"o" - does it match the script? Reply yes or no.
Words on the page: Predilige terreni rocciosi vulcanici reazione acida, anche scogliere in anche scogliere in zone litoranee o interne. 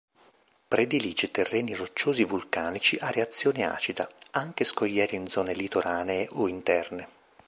yes